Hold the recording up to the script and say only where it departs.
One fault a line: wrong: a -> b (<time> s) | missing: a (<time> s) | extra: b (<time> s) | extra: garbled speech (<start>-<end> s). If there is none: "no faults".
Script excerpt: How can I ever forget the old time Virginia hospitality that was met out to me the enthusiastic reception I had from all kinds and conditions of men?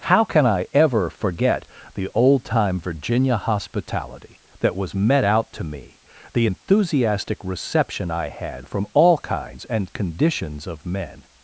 no faults